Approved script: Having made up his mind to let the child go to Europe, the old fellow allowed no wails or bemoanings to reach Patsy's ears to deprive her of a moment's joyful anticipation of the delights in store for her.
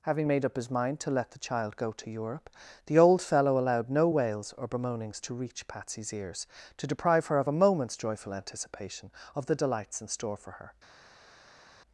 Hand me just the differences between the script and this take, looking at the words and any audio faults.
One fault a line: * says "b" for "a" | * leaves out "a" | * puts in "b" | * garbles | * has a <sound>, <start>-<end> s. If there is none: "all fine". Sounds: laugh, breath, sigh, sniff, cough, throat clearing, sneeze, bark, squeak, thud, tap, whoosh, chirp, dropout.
all fine